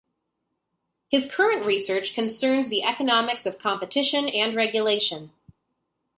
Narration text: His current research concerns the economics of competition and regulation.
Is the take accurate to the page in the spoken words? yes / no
yes